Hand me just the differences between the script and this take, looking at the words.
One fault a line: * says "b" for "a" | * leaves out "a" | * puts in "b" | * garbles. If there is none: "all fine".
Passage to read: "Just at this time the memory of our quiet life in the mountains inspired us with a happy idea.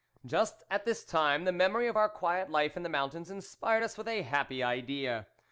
all fine